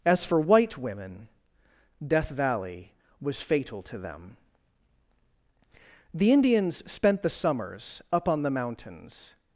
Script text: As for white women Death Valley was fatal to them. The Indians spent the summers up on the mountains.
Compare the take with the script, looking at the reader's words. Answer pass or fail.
pass